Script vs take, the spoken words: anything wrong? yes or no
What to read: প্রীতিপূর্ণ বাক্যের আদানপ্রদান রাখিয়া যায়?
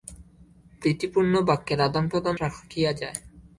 no